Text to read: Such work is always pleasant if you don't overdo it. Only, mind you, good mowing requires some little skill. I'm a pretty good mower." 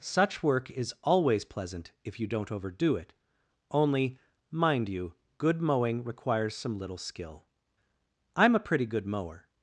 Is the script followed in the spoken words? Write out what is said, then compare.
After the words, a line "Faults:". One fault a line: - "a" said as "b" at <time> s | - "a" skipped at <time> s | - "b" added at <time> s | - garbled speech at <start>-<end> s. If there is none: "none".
Such work is always pleasant if you don't overdo it. Only, mind you, good mowing requires some little skill. I'm a pretty good mower."
Faults:
none